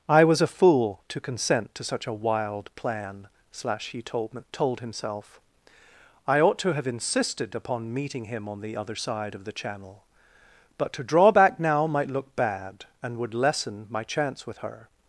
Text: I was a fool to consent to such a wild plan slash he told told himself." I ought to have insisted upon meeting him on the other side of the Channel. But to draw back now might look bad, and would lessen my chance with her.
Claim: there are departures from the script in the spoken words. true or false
false